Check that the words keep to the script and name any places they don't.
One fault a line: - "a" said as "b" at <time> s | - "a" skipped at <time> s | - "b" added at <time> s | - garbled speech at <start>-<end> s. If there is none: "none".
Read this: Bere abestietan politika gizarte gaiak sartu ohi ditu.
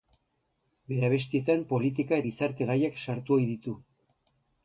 none